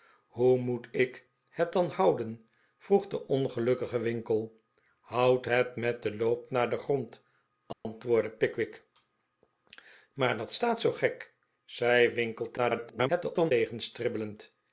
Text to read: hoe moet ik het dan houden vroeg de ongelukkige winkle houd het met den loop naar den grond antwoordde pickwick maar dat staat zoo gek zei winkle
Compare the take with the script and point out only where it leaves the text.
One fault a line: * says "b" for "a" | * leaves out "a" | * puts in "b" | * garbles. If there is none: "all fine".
* garbles